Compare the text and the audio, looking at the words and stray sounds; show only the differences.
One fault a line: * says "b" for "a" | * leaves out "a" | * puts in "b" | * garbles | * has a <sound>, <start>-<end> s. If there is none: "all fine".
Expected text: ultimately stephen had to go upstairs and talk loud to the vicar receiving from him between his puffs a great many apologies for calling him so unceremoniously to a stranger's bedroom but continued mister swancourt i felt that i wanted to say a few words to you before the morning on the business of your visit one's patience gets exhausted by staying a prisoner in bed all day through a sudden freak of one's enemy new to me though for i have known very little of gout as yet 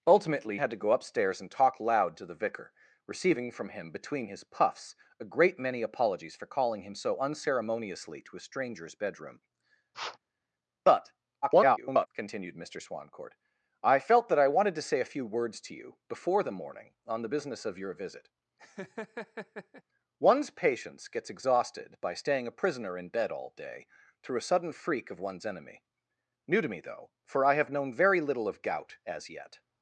* leaves out "stephen"
* has a sniff, 9.9-10.2 s
* garbles
* has a laugh, 18.6-19.8 s